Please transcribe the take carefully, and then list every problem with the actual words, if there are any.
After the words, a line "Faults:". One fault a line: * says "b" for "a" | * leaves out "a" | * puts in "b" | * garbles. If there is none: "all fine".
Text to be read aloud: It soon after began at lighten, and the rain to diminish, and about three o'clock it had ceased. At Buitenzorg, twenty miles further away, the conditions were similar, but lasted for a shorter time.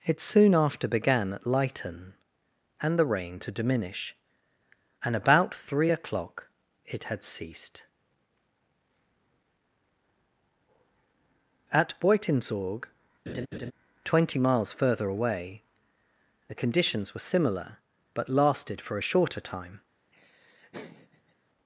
It soon after began at lighten, and the rain to diminish, and about three o'clock it had ceased. At Buitenzorg, twenty miles further away, the conditions were similar, but lasted for a shorter time.
Faults:
all fine